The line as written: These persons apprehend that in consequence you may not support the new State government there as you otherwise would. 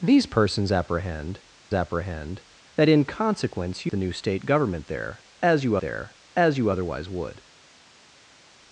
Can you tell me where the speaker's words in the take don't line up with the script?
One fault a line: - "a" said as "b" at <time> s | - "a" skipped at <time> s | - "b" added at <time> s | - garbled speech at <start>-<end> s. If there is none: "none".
- "apprehend" added at 1.7 s
- "may not support" skipped at 3.9 s
- "there as you" added at 5.8 s